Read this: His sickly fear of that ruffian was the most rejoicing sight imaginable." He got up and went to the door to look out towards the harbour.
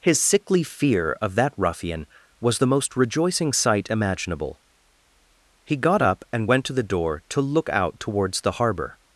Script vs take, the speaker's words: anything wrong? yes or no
no